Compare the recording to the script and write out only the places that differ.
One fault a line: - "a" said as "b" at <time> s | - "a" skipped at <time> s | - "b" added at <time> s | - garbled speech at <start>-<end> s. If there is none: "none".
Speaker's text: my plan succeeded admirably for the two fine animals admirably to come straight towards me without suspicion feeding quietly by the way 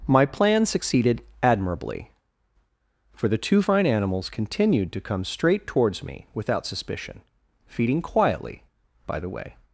- "admirably" said as "continued" at 4.3 s